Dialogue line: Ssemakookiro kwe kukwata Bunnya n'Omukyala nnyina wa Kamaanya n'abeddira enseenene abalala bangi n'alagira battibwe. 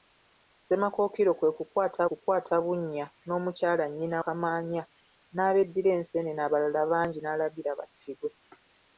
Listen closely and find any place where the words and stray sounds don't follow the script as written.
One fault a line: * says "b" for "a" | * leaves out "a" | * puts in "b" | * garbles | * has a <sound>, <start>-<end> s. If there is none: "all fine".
* puts in "kukwata"
* leaves out "wa"